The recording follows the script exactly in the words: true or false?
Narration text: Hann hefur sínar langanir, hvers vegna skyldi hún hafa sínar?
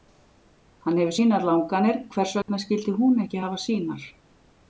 false